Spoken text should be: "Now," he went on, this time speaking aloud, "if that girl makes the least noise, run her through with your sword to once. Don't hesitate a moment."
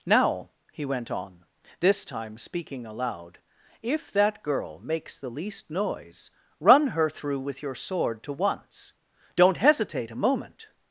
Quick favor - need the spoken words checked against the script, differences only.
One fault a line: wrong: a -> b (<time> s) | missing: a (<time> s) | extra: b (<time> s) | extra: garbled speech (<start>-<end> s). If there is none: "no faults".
no faults